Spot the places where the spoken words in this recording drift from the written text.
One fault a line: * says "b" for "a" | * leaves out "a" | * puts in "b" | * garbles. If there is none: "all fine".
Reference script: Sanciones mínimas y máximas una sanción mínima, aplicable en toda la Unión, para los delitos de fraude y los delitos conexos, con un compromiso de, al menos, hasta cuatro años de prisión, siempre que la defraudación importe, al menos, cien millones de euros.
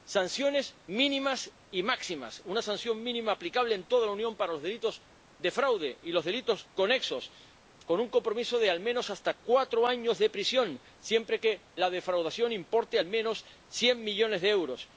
all fine